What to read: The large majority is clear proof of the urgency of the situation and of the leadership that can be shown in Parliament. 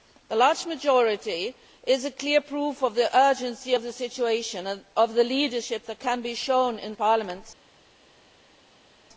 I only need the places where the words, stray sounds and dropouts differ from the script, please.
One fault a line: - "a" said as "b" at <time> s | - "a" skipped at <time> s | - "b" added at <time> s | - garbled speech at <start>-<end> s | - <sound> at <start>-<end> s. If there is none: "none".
none